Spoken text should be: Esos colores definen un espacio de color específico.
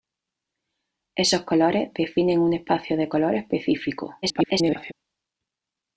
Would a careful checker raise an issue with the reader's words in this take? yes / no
yes